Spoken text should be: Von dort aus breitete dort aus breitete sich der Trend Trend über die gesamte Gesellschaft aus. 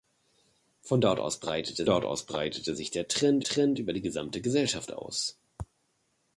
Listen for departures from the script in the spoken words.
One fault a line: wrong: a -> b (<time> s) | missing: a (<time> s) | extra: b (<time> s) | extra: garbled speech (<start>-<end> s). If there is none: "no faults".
no faults